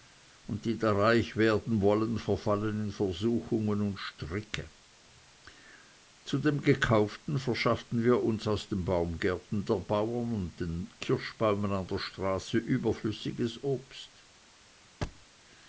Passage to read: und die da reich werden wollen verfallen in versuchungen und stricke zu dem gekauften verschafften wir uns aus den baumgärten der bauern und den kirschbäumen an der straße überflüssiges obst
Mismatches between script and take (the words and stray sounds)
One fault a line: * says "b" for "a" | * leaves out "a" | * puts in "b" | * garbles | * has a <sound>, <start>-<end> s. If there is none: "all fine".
* has a thud, 15.0-15.3 s